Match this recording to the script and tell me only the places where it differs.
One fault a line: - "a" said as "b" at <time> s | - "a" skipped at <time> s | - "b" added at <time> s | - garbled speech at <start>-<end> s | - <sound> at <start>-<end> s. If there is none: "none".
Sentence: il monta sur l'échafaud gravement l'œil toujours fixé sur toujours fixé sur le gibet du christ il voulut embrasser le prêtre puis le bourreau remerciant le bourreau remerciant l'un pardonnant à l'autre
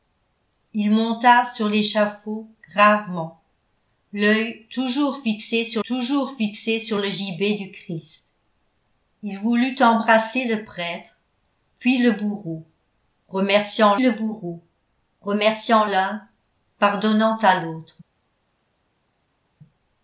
none